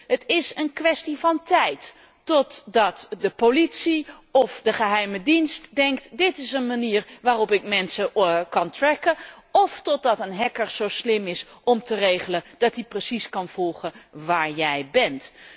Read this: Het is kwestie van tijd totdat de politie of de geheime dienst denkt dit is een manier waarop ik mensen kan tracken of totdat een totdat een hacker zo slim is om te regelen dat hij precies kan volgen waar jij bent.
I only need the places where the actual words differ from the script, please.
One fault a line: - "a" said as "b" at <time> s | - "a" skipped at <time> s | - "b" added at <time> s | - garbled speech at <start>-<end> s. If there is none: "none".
- "een" added at 0.5 s
- "totdat een" skipped at 10.3 s